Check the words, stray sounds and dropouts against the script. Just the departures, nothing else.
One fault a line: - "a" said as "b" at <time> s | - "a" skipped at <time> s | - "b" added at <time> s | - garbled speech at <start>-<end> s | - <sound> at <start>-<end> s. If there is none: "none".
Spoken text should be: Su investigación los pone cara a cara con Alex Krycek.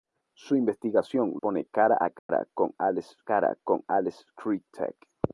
- "los" skipped at 1.3 s
- dropout at 2.2-2.3 s
- "cara con Alex" added at 3.2 s